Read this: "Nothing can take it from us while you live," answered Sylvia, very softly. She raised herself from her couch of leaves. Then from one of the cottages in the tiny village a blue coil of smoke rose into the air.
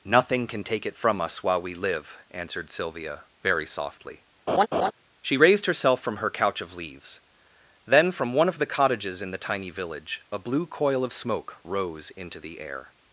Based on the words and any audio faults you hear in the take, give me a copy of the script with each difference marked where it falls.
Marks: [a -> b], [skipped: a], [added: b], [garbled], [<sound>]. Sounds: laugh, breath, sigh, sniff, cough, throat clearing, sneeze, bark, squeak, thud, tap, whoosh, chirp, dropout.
"Nothing can take it from us while [you -> we] live," answered Sylvia, very softly. [laugh] She raised herself from her couch of leaves. Then from one of the cottages in the tiny village a blue coil of smoke rose into the air.